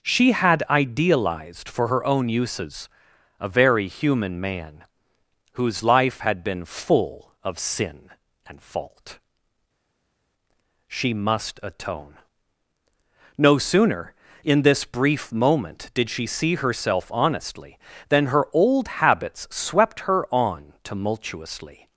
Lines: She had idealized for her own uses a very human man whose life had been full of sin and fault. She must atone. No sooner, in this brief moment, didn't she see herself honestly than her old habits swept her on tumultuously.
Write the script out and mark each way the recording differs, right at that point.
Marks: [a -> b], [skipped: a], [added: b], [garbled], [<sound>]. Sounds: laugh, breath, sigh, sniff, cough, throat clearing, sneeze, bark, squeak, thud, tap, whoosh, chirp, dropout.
She had idealized for her own uses a very human man whose life had been full of sin and fault. She must atone. No sooner, in this brief moment, [didn't -> did] she see herself honestly than her old habits swept her on tumultuously.